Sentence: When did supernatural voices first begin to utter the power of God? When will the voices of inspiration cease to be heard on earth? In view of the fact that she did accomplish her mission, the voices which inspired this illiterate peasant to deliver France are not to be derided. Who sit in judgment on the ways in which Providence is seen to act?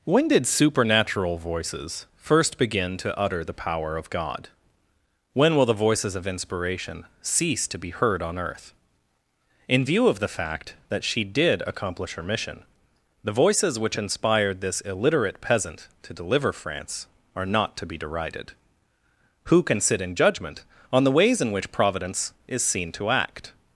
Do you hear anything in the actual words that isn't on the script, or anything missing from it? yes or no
yes